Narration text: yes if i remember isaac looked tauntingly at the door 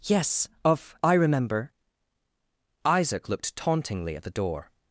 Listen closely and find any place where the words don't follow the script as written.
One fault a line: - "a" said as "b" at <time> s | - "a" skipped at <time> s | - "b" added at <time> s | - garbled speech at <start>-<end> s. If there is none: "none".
- "if" said as "of" at 0.7 s